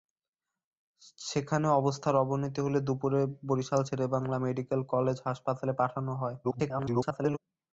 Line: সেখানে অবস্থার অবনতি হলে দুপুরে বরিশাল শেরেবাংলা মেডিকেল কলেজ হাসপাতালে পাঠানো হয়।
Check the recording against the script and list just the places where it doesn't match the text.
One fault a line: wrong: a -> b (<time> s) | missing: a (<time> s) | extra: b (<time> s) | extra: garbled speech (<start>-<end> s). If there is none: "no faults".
extra: garbled speech (6.4-7.4 s)